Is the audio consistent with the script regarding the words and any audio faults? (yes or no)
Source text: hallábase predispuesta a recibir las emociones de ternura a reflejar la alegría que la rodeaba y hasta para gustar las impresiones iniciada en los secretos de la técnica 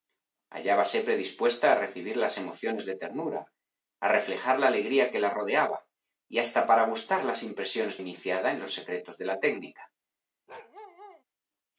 no